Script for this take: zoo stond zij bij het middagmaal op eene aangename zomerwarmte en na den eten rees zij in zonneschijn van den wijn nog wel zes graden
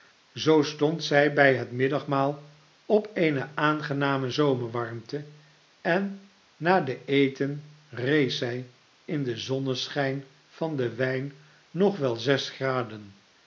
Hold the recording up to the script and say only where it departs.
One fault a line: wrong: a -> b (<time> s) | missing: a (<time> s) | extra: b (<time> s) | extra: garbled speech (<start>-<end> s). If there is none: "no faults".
extra: den (9.2 s)